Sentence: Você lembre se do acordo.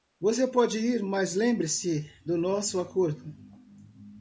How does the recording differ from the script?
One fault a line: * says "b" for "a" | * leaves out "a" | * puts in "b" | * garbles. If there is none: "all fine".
* puts in "pode ir mas"
* puts in "nosso"